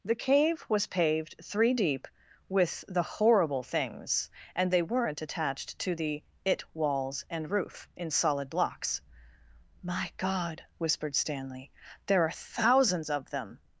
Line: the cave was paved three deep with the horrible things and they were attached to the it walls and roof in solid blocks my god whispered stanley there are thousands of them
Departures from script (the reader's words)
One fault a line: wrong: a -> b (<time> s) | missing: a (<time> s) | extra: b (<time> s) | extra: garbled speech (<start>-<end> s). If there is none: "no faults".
wrong: were -> weren't (4.8 s)